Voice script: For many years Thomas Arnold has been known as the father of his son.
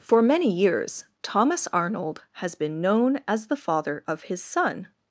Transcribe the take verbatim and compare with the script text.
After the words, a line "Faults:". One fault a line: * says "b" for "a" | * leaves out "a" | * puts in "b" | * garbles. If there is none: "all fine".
For many years Thomas Arnold has been known as the father of his son.
Faults:
all fine